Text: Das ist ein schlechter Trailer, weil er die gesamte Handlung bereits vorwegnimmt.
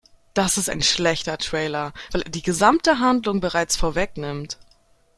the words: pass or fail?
pass